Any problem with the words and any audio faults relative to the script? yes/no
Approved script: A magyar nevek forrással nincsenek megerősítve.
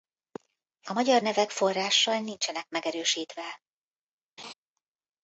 yes